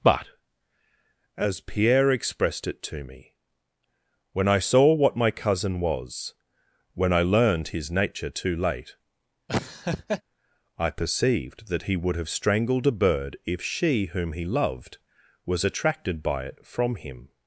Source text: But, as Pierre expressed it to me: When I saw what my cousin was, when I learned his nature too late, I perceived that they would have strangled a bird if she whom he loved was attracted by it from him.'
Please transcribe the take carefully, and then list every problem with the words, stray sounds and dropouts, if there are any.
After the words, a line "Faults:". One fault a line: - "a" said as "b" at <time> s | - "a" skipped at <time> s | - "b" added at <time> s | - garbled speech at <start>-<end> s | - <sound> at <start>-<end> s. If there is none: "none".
But, as Pierre expressed it to me: When I saw what my cousin was, when I learned his nature too late, I perceived that he would have strangled a bird if she whom he loved was attracted by it from him.'
Faults:
- laugh at 9.5-10.2 s
- "they" said as "he" at 11.8 s